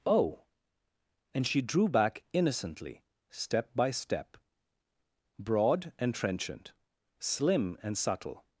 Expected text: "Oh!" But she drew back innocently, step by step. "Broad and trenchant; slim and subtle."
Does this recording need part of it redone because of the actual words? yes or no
yes